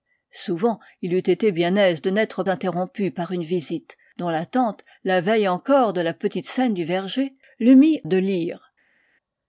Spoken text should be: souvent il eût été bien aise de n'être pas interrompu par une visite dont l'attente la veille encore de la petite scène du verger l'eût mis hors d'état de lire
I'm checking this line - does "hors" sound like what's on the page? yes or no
no